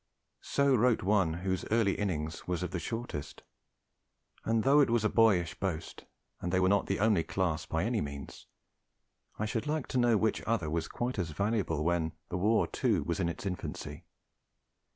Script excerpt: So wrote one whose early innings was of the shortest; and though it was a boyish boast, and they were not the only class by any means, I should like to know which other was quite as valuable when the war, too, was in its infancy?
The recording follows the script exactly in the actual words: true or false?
true